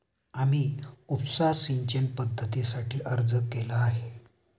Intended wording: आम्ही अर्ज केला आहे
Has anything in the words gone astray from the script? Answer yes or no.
yes